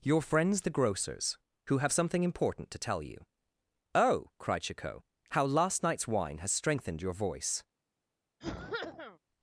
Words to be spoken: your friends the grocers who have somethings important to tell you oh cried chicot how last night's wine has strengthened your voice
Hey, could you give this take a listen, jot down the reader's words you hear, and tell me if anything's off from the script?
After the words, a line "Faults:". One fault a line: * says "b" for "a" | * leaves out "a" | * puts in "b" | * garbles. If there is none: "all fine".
your friends the grocers who have something important to tell you oh cried chicot how last night's wine has strengthened your voice
Faults:
* says "something" for "somethings"